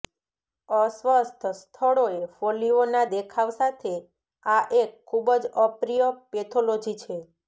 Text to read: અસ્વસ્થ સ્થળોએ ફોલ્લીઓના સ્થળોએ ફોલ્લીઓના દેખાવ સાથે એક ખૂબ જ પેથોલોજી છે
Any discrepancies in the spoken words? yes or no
yes